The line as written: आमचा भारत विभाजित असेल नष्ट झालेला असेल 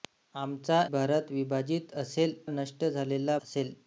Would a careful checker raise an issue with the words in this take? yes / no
no